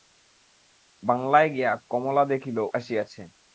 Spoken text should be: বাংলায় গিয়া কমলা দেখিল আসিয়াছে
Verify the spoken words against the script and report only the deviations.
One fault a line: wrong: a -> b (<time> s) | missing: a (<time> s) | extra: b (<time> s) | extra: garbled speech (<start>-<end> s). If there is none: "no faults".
no faults